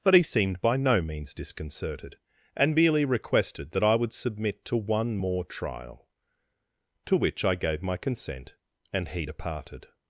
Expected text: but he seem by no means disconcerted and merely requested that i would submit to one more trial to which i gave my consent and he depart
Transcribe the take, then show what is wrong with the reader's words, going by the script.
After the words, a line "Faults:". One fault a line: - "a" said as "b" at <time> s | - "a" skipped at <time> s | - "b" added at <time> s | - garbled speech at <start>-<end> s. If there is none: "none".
but he seemed by no means disconcerted and merely requested that i would submit to one more trial to which i gave my consent and he departed
Faults:
- "seem" said as "seemed" at 0.2 s
- "depart" said as "departed" at 9.2 s